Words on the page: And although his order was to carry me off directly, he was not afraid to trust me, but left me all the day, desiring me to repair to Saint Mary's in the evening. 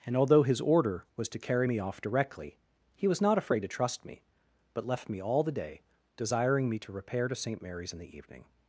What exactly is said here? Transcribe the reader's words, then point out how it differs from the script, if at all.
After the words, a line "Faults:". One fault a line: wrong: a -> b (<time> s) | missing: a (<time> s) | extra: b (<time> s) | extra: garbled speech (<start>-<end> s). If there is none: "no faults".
And although his order was to carry me off directly, he was not afraid to trust me, but left me all the day, desiring me to repair to Saint Mary's in the evening.
Faults:
no faults